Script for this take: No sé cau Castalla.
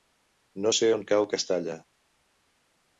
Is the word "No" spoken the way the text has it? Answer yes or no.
yes